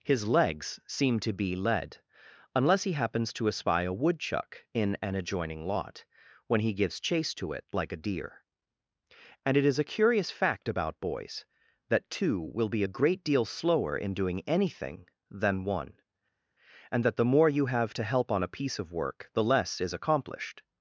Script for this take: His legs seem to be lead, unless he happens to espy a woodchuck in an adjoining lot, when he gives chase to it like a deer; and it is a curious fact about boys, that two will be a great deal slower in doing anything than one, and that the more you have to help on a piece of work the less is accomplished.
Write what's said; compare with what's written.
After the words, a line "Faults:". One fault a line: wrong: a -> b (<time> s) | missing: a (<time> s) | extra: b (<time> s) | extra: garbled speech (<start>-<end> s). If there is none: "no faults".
His legs seem to be lead, unless he happens to espy a woodchuck in an adjoining lot, when he gives chase to it like a deer; and it is a curious fact about boys, that two will be a great deal slower in doing anything than one, and that the more you have to help on a piece of work the less is accomplished.
Faults:
no faults